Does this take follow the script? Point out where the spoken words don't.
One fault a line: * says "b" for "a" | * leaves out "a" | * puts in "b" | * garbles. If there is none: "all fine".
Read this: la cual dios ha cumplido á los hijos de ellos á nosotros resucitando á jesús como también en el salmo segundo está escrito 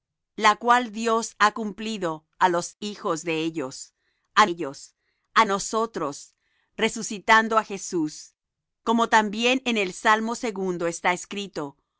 * puts in "ellos á"